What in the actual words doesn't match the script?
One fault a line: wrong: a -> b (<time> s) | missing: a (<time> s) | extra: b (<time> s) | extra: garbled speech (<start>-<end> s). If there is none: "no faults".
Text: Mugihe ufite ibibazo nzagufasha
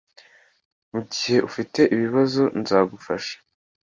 no faults